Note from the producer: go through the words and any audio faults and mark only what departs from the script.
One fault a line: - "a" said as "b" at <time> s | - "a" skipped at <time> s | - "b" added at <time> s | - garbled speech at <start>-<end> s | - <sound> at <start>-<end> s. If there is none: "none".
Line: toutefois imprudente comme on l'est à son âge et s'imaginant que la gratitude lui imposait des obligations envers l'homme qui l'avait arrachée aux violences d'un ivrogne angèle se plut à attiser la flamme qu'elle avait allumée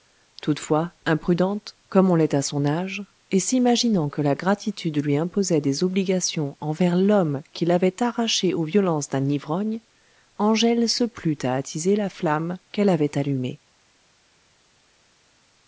none